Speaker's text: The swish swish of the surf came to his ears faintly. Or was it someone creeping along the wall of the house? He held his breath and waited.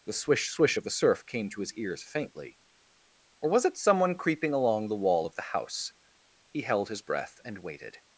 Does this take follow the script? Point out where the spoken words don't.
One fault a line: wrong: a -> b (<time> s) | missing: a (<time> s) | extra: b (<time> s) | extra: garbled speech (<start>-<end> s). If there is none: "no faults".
no faults